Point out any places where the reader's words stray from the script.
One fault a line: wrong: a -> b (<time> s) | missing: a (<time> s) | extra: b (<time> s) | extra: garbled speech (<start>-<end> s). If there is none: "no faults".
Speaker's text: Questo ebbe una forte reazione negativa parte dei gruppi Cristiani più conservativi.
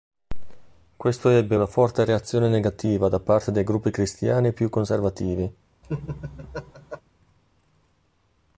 extra: da (3.1 s)